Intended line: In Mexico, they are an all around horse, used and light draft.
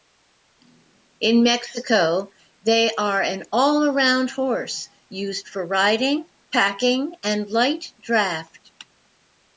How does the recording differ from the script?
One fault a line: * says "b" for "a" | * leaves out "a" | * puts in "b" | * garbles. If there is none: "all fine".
* puts in "for riding packing"